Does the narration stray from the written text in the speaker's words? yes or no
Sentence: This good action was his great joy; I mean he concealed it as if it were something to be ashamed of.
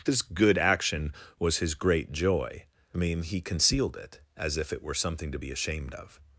no